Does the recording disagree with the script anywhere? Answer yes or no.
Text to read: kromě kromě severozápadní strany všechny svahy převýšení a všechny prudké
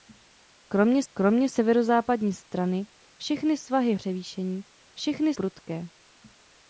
no